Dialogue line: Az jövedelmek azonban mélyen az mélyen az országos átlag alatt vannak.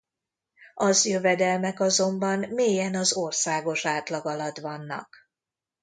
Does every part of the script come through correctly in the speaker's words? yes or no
no